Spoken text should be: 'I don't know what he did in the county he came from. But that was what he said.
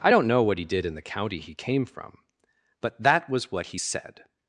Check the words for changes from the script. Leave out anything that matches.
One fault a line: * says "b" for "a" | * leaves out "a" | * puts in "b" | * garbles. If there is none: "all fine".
all fine